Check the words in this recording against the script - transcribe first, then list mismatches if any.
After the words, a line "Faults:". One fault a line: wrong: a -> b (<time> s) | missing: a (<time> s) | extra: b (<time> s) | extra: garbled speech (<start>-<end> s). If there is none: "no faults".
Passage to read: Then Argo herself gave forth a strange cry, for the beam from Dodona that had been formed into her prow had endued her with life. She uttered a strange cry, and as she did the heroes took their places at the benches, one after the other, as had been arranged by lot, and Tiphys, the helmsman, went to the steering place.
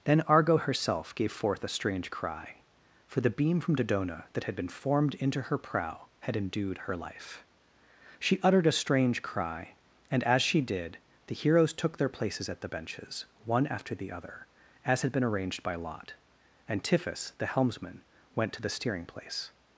Then Argo herself gave forth a strange cry, for the beam from Dodona that had been formed into her prow had endued her life. She uttered a strange cry, and as she did the heroes took their places at the benches, one after the other, as had been arranged by lot, and Tiphys, the helmsman, went to the steering place.
Faults:
missing: with (7.0 s)